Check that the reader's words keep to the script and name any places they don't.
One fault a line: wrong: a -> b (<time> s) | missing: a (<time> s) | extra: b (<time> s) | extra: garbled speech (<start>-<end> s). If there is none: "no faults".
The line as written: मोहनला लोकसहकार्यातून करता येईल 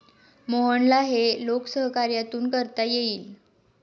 extra: हे (1.0 s)